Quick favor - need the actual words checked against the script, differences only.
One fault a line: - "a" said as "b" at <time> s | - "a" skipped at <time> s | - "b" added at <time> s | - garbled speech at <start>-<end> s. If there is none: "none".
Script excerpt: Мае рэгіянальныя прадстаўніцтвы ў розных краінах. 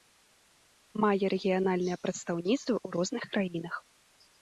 none